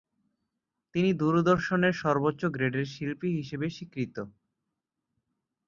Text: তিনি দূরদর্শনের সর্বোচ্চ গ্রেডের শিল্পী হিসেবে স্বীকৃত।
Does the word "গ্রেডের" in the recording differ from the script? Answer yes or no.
no